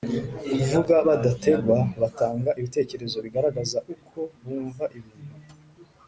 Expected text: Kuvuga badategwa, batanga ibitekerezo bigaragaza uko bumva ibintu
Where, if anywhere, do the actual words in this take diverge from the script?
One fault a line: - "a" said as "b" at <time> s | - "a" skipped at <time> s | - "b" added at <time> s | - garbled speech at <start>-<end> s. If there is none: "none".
none